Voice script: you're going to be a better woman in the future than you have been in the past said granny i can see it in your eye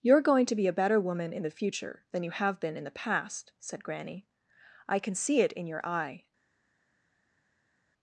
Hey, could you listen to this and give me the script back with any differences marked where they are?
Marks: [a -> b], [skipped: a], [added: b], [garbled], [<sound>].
you're going to be a better woman in the future than you have been in the past said granny i can see it in your eye